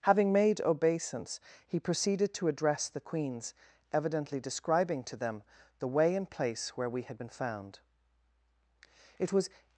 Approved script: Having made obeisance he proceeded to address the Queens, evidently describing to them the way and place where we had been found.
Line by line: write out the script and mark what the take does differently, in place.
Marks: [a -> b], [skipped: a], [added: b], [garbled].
Having made obeisance he proceeded to address the Queens, evidently describing to them the way and place where we had been found. [added: It was]